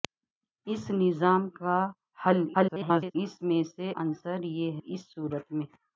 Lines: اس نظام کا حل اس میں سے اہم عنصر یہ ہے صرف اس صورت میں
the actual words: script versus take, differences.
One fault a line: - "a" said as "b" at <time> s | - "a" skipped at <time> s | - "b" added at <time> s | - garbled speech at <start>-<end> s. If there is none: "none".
- garbled speech at 2.5-3.2 s
- "اہم" skipped at 3.9 s
- "ہے صرف" skipped at 4.8 s